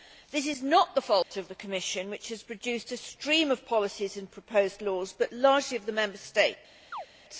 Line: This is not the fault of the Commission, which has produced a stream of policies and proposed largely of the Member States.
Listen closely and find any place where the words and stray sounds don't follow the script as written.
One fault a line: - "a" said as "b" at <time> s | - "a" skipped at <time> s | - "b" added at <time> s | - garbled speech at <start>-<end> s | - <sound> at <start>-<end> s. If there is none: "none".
- dropout at 1.2-1.3 s
- "laws but" added at 4.8 s
- chirp at 6.9-7.1 s